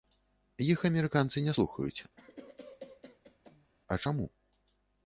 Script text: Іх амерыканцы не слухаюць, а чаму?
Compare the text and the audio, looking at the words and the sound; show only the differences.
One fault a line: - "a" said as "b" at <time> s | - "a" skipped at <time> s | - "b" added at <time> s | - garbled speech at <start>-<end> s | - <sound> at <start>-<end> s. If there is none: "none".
- cough at 2.2-3.7 s